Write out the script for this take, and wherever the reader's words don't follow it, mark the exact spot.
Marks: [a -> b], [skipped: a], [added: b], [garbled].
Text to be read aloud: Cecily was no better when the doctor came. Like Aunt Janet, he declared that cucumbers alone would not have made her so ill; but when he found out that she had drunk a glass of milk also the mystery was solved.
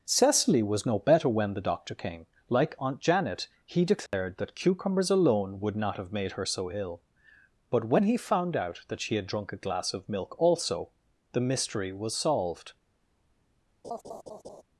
Cecily was no better when the doctor came. Like Aunt Janet, he declared that cucumbers alone would not have made her so ill; but when he found out that she had drunk a glass of milk also the mystery was solved.